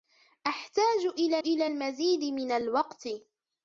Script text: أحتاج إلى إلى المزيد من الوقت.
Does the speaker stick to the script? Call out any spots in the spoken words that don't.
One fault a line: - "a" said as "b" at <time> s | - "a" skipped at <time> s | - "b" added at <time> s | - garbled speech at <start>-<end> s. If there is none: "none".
none